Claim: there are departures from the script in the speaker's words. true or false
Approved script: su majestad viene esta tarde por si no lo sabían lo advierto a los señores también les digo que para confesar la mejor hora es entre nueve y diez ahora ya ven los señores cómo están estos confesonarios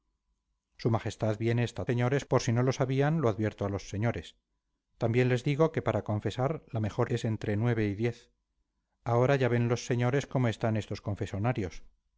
true